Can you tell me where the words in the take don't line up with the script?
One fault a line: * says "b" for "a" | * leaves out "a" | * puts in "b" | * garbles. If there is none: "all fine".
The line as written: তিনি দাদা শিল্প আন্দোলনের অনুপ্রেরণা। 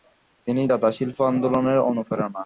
all fine